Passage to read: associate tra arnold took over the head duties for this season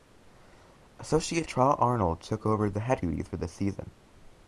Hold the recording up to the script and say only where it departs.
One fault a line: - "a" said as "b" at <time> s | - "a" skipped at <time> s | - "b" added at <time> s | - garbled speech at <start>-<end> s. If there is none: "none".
none